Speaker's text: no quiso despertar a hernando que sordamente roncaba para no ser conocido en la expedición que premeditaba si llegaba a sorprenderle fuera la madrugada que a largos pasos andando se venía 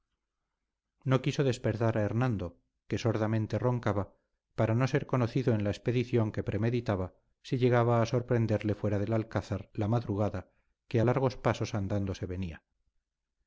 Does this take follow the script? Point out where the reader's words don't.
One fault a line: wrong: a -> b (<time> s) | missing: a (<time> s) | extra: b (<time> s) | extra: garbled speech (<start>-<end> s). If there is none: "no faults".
extra: del alcázar (9.0 s)